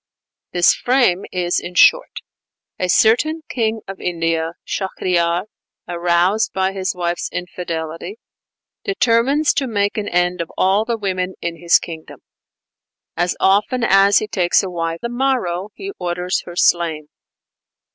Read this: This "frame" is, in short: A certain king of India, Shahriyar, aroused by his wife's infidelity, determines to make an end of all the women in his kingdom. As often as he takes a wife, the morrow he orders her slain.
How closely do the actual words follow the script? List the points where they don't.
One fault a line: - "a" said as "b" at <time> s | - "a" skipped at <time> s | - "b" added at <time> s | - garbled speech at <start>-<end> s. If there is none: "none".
none